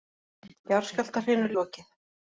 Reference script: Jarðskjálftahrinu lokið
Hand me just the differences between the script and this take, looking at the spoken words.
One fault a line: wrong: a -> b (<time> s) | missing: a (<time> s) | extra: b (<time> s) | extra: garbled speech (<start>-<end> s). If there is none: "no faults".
no faults